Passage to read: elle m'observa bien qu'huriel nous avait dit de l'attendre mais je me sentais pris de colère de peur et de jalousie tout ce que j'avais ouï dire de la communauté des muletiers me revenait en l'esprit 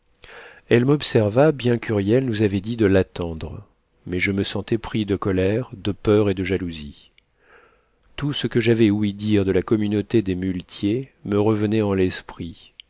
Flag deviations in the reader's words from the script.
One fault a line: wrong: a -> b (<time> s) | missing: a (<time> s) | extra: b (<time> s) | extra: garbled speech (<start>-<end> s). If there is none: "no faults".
no faults